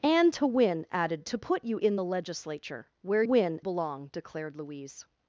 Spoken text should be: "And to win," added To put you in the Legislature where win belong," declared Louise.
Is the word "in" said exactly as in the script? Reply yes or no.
yes